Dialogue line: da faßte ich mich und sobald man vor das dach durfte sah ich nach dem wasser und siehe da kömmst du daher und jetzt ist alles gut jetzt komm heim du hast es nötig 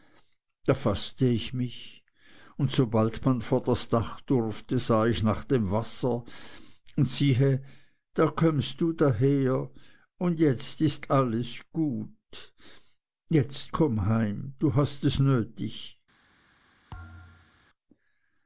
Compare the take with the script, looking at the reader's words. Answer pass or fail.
pass